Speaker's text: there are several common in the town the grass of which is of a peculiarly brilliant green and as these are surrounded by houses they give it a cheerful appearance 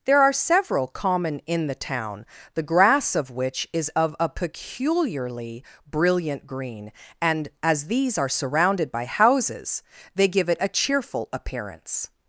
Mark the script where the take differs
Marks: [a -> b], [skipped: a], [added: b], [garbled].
there are several common in the town the grass of which is of a peculiarly brilliant green and as these are surrounded by houses they give it a cheerful appearance